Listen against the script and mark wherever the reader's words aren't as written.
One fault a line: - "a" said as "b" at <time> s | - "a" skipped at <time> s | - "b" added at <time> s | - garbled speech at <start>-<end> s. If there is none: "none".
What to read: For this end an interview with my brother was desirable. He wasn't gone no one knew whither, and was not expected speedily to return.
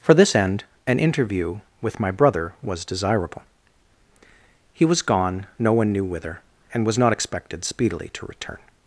- "wasn't" said as "was" at 4.8 s